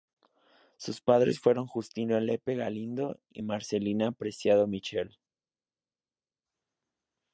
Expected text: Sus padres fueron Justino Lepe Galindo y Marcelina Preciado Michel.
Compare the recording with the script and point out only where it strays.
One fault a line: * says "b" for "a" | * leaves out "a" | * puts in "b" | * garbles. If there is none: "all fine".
all fine